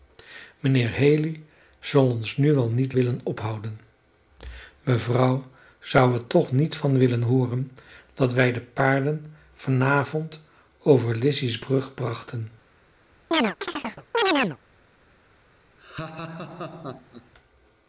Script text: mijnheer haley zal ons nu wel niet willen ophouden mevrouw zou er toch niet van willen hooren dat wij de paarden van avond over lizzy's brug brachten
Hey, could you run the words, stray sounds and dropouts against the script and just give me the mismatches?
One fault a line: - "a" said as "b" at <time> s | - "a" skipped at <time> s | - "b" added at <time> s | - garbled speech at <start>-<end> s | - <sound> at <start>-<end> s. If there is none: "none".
- chirp at 13.3-14.6 s
- laugh at 15.8-17.3 s